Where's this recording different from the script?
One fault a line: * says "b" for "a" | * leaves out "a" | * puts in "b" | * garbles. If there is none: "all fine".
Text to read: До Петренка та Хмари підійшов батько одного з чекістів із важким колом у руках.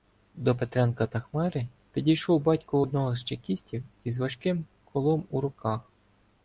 all fine